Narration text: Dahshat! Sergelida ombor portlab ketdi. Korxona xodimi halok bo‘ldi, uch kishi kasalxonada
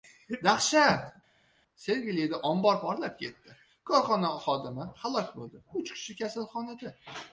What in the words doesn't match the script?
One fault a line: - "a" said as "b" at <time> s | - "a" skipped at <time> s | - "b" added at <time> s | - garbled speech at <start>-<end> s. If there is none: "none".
none